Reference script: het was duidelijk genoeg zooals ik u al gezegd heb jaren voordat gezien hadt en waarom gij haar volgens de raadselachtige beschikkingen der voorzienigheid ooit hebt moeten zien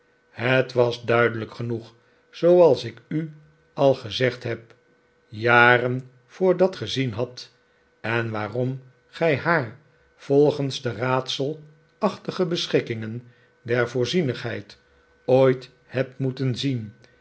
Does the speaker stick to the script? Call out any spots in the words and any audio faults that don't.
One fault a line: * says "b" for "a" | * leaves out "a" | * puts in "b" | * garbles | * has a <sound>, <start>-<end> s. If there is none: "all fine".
all fine